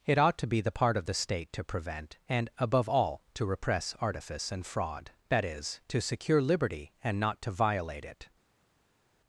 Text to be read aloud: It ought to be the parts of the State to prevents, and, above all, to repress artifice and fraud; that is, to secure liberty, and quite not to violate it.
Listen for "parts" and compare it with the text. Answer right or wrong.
wrong